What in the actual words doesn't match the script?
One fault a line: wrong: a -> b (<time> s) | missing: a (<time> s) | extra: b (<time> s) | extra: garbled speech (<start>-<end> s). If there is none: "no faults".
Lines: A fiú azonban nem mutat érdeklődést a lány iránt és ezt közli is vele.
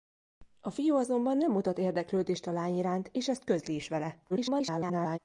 extra: garbled speech (4.3-5.2 s)